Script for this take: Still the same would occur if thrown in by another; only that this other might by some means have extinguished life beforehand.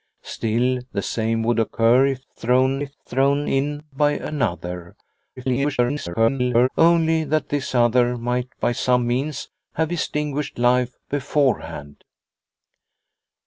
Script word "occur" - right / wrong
right